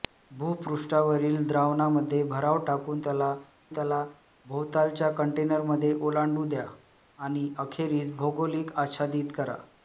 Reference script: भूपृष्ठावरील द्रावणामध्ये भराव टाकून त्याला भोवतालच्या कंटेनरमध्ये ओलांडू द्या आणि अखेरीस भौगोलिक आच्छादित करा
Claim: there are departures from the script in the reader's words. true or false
true